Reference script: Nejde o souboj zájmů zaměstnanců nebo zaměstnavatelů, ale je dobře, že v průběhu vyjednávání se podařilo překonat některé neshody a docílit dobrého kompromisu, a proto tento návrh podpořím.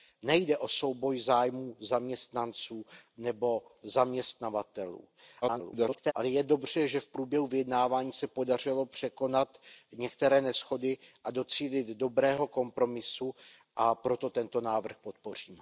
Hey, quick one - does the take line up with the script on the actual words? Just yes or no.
no